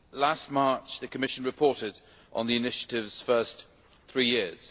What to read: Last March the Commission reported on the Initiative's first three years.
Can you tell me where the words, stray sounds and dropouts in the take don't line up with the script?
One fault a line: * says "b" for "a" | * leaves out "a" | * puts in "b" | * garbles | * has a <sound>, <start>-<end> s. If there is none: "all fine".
all fine